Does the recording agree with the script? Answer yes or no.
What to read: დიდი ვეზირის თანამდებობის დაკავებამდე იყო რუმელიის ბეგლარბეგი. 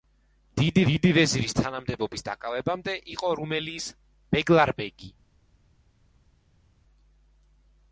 no